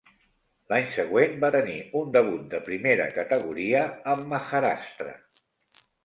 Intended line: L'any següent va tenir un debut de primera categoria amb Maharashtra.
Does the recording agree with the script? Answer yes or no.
yes